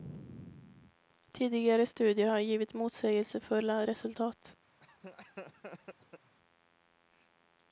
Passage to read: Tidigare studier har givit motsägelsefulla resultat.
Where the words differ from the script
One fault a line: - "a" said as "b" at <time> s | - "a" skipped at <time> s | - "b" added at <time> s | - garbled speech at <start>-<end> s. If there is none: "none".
none